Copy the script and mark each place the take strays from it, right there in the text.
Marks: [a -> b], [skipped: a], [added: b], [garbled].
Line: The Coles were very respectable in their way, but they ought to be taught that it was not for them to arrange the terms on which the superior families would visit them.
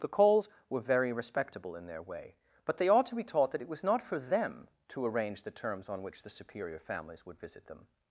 The Coles were very respectable in their way, but they ought to be taught that it was not for them to arrange the terms on which the superior families would visit them.